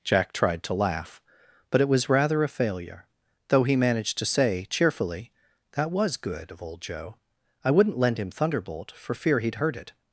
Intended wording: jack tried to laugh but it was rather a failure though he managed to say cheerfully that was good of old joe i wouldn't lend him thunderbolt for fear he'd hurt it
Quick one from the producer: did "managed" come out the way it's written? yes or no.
yes